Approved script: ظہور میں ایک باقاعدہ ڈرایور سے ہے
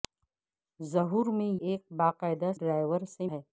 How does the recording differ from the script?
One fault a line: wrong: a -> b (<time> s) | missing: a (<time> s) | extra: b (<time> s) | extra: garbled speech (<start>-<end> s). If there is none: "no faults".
no faults